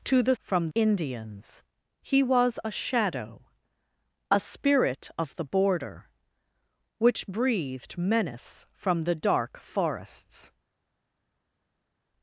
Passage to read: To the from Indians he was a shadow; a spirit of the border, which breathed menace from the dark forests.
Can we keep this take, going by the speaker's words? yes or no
yes